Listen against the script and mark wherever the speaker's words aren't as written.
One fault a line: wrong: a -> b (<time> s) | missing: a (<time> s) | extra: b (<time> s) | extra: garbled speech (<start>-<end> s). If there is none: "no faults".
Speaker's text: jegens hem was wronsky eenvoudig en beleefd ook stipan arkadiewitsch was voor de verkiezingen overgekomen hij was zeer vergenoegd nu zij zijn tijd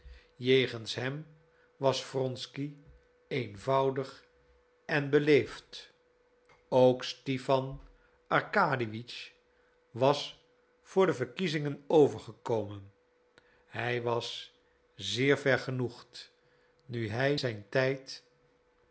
wrong: zij -> hij (17.1 s)